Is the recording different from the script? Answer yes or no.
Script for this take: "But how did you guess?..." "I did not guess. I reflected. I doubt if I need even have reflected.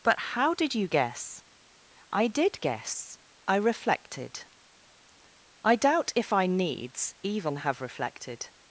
yes